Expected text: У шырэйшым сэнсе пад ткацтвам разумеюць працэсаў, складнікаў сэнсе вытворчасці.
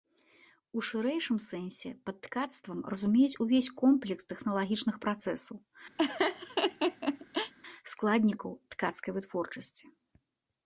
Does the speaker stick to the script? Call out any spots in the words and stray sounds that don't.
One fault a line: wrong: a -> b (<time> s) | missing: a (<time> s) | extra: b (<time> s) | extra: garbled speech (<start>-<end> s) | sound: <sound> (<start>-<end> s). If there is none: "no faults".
extra: увесь комплекс тэхналагічных (3.5 s)
sound: laugh (6.0-7.5 s)
wrong: сэнсе -> ткацкай (8.8 s)